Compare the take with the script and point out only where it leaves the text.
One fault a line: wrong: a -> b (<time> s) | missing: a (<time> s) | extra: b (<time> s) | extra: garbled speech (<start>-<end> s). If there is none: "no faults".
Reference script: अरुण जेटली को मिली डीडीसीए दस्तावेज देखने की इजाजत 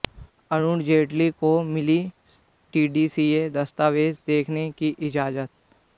no faults